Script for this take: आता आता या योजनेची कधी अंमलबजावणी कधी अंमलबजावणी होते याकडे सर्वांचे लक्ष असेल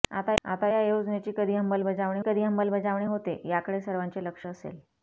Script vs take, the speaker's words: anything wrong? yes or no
no